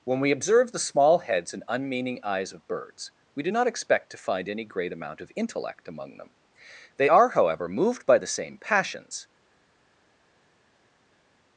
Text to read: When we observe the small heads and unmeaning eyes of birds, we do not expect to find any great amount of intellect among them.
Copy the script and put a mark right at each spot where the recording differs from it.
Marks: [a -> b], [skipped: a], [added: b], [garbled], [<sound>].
When we observe the small heads and unmeaning eyes of birds, we do not expect to find any great amount of intellect among them. [added: They are however moved by the same passions]